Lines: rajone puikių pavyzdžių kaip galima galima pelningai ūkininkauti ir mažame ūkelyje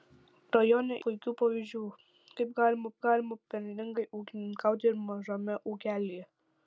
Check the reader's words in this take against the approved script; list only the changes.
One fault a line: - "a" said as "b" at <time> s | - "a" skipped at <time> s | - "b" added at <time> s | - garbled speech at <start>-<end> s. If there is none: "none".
none